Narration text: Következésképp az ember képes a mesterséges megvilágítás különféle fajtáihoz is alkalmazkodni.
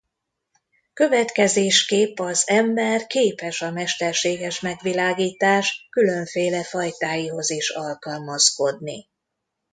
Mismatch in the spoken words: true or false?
false